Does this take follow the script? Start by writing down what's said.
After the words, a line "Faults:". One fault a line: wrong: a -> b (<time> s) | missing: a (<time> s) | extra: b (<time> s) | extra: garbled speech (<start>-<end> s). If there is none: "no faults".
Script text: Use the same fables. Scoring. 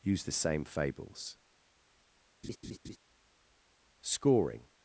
Use the same fables. Scoring.
Faults:
no faults